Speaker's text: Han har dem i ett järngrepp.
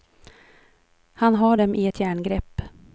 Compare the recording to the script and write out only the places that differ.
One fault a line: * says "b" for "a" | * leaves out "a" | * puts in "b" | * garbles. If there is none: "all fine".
all fine